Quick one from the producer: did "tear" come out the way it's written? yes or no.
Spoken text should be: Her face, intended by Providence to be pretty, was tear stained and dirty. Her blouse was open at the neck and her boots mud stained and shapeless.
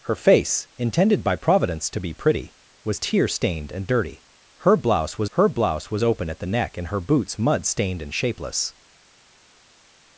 yes